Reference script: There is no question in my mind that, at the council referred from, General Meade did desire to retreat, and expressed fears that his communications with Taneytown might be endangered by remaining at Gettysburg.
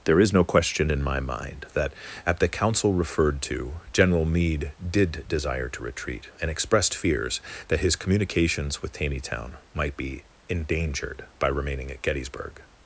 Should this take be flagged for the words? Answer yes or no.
yes